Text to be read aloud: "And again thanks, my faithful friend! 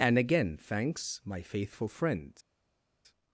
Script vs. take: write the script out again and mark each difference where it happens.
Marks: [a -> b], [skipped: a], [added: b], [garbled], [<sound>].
"And again thanks, my faithful friend!